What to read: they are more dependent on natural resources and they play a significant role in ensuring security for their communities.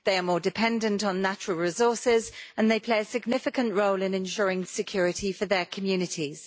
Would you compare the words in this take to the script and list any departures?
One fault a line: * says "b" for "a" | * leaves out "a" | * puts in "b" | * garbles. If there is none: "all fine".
all fine